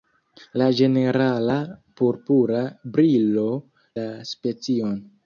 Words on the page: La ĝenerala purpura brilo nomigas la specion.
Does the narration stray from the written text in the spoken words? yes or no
yes